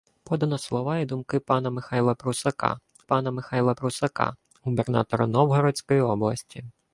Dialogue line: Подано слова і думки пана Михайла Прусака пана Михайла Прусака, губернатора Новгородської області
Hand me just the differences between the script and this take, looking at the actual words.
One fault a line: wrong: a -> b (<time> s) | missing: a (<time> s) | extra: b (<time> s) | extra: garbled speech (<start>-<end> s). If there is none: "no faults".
no faults